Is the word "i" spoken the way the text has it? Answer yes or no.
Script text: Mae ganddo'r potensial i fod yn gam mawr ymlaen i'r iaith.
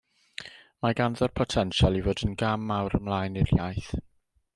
yes